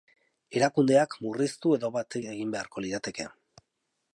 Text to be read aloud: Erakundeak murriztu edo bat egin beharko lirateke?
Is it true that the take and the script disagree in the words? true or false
false